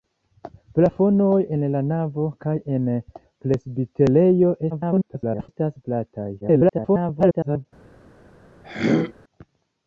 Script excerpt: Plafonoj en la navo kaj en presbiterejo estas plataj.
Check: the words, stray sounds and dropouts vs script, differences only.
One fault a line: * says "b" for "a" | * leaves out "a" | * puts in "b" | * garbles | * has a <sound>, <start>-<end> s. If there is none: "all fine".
* garbles
* garbles
* has a throat clearing, 8.6-9.1 s